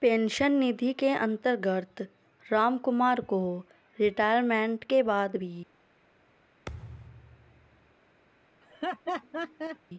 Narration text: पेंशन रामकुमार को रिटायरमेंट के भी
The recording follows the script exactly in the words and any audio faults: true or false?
false